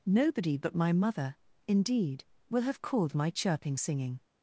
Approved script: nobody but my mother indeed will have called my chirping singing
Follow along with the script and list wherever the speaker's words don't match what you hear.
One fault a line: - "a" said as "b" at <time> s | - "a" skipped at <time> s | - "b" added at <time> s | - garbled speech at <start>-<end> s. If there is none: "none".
none